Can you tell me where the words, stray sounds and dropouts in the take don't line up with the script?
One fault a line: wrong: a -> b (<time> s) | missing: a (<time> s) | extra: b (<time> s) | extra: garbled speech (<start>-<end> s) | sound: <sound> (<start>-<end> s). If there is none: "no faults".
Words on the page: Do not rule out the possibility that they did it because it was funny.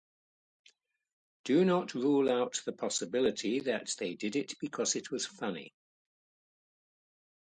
no faults